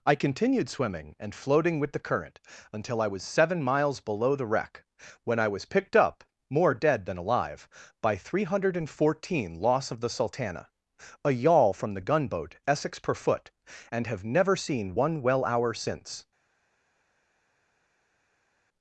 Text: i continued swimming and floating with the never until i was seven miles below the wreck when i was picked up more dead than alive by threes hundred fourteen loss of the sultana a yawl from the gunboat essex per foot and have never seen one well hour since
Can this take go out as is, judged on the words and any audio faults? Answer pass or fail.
fail